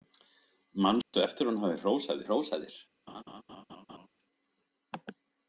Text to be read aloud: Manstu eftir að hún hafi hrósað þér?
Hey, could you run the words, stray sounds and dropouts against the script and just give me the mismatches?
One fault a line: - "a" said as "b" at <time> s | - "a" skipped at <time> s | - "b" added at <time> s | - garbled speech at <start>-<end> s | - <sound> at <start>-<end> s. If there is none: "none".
- dropout at 1.0-1.1 s
- "hrósað" added at 2.3 s
- laugh at 3.1-4.1 s